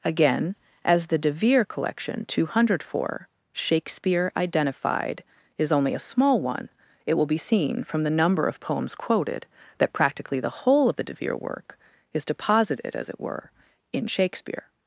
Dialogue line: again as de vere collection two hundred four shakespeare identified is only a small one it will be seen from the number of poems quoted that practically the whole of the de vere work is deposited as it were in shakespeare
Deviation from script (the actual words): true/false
true